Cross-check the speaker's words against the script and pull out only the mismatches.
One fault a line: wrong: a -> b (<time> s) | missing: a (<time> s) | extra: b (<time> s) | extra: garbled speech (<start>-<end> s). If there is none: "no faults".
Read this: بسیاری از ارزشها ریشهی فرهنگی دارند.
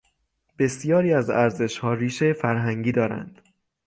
no faults